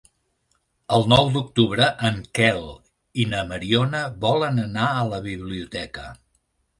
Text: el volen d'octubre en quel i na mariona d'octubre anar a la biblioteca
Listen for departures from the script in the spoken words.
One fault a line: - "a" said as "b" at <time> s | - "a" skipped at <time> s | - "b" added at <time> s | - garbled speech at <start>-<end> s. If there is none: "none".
- "volen" said as "nou" at 1.1 s
- "d'octubre" said as "volen" at 4.3 s